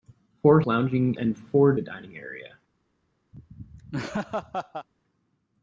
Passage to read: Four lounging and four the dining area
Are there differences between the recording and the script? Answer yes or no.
no